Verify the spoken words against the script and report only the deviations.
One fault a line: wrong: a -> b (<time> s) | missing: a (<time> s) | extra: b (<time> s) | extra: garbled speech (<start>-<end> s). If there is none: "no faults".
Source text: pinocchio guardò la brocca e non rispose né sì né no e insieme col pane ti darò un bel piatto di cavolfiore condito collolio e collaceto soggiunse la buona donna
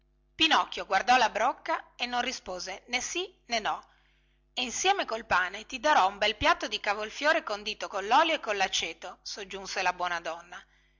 no faults